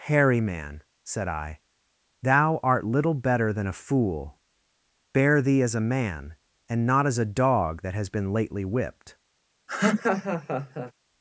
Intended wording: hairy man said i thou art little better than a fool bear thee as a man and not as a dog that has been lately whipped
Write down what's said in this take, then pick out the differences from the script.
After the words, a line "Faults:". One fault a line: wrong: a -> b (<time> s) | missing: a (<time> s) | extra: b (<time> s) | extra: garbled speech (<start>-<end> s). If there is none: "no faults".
hairy man said i thou art little better than a fool bear thee as a man and not as a dog that has been lately whipped
Faults:
no faults